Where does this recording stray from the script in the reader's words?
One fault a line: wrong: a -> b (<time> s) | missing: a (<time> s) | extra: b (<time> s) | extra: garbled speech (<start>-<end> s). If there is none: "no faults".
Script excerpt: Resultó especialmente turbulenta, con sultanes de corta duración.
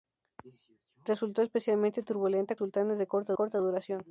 missing: con (2.5 s)
extra: corta (3.3 s)